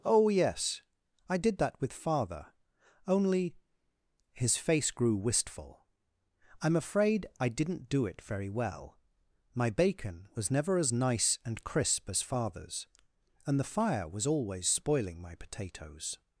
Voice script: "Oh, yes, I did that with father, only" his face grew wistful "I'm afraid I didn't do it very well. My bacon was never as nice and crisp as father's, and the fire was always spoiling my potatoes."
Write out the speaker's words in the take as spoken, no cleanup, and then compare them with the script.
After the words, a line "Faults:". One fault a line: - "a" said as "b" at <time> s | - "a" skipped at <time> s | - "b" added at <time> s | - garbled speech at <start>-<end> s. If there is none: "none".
"Oh, yes, I did that with father, only" his face grew wistful "I'm afraid I didn't do it very well. My bacon was never as nice and crisp as father's, and the fire was always spoiling my potatoes."
Faults:
none